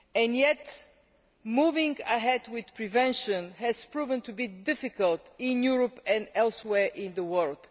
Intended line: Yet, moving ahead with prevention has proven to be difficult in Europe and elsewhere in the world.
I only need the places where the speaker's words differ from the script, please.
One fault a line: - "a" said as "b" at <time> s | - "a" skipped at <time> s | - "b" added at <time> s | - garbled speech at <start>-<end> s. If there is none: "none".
none